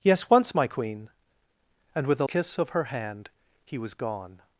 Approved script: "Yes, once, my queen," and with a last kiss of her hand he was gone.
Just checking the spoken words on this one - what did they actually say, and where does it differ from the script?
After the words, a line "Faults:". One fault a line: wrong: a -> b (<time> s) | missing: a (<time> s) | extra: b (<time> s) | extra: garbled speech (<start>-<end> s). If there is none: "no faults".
"Yes, once, my queen," and with a kiss of her hand he was gone.
Faults:
missing: last (2.2 s)